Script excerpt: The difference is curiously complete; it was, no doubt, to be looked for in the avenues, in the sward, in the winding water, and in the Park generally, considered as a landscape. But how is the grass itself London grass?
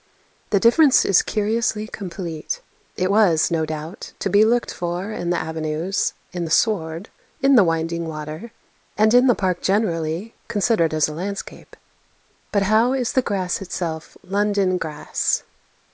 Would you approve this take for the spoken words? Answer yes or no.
yes